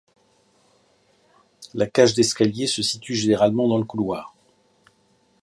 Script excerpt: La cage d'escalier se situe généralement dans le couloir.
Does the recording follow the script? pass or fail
pass